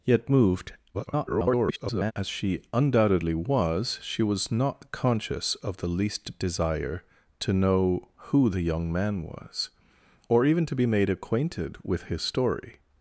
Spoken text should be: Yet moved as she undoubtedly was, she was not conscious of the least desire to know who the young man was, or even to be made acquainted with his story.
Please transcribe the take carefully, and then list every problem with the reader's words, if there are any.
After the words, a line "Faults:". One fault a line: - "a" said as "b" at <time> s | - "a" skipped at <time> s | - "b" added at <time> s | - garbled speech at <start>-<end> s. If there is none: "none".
Yet moved [garbled] as she undoubtedly was, she was not conscious of the least desire to know who the young man was, or even to be made acquainted with his story.
Faults:
- garbled speech at 0.9-2.1 s